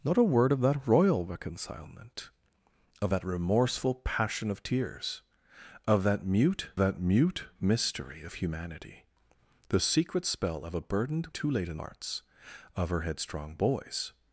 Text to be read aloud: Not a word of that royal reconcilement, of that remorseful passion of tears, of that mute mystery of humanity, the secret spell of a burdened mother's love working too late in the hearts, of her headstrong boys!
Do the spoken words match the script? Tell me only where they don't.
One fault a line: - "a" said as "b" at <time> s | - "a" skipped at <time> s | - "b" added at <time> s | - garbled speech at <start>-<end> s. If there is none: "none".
- "that mute" added at 6.8 s
- "mother's love working" skipped at 11.3 s
- "the" skipped at 11.8 s